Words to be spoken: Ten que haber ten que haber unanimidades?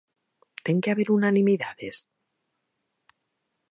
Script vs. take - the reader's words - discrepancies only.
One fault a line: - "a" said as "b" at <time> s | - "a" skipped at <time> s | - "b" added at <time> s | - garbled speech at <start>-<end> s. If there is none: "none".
- "ten que haber" skipped at 1.1 s